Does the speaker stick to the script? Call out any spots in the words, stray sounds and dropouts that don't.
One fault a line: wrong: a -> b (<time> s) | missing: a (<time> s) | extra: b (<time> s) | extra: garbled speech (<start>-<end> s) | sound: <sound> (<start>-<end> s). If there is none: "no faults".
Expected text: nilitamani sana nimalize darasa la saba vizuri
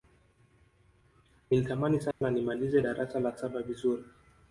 sound: dropout (2.1-2.2 s)